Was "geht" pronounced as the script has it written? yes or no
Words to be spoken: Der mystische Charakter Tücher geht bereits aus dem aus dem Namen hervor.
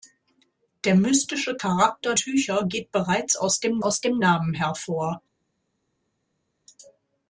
yes